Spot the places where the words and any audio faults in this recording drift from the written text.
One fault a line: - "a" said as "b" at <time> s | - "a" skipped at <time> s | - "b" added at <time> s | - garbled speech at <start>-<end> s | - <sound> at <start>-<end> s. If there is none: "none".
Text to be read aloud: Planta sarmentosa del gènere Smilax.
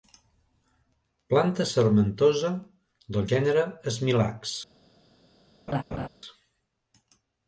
- laugh at 5.7-6.1 s